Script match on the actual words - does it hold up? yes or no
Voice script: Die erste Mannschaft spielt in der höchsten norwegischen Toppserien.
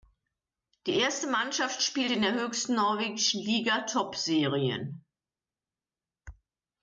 no